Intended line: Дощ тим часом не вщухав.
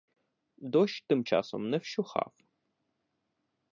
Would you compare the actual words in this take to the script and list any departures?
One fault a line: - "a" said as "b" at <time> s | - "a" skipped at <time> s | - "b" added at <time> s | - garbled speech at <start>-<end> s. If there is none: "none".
none